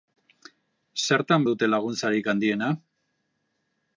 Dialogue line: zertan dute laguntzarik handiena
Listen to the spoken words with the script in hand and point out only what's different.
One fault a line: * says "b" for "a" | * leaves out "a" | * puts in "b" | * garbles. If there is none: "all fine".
all fine